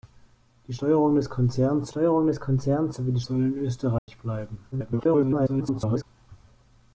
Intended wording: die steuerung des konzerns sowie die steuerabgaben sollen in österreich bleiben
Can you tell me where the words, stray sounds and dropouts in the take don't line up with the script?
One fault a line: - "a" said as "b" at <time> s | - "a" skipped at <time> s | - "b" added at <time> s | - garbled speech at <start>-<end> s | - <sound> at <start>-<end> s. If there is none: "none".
- "steuerung des konzerns" added at 1.9 s
- "steuerabgaben" skipped at 3.2 s
- dropout at 4.0-4.1 s
- garbled speech at 4.7-6.0 s